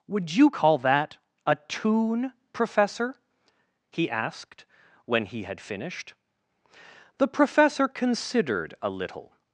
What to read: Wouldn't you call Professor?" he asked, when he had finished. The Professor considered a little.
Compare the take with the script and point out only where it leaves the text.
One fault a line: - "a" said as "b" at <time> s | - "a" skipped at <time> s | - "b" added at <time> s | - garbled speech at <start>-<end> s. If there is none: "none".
- "Wouldn't" said as "Would" at 0.1 s
- "that a tune" added at 0.8 s